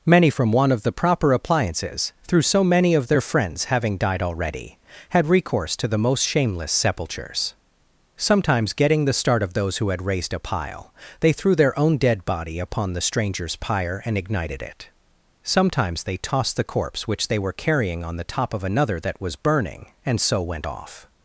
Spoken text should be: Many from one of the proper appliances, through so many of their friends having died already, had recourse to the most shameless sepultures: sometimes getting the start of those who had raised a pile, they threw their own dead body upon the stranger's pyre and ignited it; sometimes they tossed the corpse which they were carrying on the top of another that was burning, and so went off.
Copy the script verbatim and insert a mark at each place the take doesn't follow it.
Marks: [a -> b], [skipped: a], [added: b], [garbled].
Many from one of the proper appliances, through so many of their friends having died already, had recourse to the most shameless sepultures: sometimes getting the start of those who had raised a pile, they threw their own dead body upon the stranger's pyre and ignited it; sometimes they tossed the corpse which they were carrying on the top of another that was burning, and so went off.